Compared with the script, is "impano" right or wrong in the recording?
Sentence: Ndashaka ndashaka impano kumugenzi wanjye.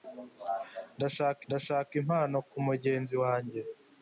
right